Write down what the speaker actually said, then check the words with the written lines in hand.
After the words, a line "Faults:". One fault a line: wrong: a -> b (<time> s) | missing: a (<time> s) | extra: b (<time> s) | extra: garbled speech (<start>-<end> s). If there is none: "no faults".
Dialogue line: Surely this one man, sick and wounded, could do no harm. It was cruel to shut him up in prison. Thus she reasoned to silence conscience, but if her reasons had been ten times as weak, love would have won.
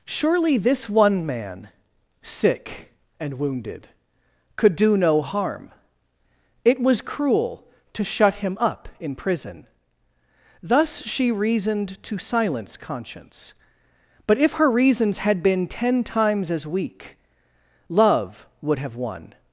Surely this one man, sick and wounded, could do no harm. It was cruel to shut him up in prison. Thus she reasoned to silence conscience, but if her reasons had been ten times as weak, love would have won.
Faults:
no faults